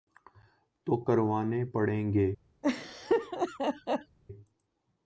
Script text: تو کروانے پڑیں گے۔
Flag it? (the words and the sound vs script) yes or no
yes